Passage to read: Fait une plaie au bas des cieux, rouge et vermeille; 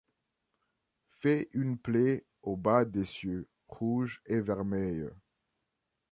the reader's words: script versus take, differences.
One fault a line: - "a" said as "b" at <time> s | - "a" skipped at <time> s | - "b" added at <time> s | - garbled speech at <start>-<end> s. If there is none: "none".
none